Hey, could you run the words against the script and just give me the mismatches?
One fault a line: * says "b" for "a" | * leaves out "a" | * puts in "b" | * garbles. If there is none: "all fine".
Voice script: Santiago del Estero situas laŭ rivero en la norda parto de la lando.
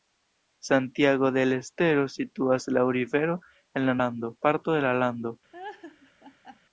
* says "lando" for "norda"